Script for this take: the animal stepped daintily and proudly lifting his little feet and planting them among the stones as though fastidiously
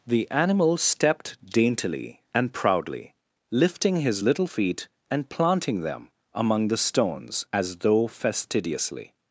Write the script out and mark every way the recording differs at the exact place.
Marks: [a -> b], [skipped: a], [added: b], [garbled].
the animal stepped daintily and proudly lifting his little feet and planting them among the stones as though fastidiously